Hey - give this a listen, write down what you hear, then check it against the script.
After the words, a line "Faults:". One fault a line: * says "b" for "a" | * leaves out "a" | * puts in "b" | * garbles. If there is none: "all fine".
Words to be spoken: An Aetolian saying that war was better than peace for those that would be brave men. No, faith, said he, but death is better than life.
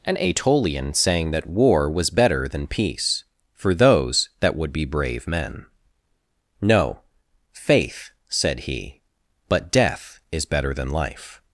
An Aetolian saying that war was better than peace for those that would be brave men. No, faith, said he, but death is better than life.
Faults:
all fine